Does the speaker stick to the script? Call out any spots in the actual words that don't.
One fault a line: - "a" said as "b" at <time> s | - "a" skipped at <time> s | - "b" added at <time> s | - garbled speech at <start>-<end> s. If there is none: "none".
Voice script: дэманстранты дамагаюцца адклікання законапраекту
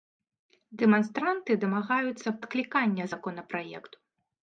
none